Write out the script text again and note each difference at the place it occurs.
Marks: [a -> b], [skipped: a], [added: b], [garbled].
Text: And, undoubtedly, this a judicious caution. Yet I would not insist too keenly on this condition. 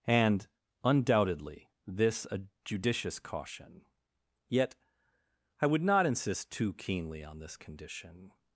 And, undoubtedly, this a judicious caution. Yet I would not insist too keenly on this condition.